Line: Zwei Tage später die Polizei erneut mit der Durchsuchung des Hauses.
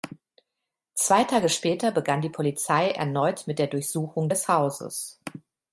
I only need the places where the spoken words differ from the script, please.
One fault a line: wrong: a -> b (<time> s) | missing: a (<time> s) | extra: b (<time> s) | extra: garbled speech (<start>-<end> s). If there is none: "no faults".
extra: begann (1.9 s)